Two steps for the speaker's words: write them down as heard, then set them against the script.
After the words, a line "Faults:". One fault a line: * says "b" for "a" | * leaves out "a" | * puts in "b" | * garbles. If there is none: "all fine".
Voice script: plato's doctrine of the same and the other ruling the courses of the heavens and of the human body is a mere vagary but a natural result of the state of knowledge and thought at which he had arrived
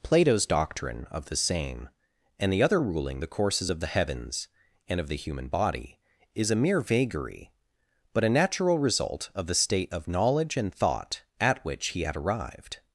plato's doctrine of the same and the other ruling the courses of the heavens and of the human body is a mere vagary but a natural result of the state of knowledge and thought at which he had arrived
Faults:
all fine